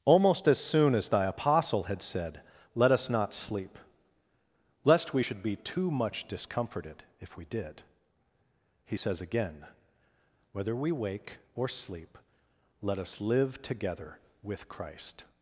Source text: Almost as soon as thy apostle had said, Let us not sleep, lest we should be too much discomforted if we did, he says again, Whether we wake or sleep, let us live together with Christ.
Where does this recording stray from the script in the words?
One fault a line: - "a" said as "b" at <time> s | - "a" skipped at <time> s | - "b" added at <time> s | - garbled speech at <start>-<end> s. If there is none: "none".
none